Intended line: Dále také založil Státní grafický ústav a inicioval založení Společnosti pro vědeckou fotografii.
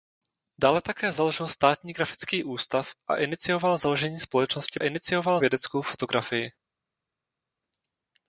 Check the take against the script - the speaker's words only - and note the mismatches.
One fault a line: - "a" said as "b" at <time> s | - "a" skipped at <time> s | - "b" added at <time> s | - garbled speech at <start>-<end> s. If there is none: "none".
- "pro" said as "inicioval" at 4.8 s